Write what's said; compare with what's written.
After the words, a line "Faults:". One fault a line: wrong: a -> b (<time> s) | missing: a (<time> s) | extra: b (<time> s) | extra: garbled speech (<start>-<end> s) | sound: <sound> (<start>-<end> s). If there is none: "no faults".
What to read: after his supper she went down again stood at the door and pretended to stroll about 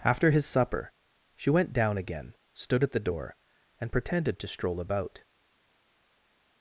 after his supper she went down again stood at the door and pretended to stroll about
Faults:
no faults